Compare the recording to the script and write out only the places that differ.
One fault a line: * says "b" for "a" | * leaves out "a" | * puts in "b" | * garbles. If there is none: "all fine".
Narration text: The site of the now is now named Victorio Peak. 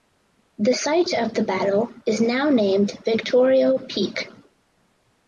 * says "battle" for "now"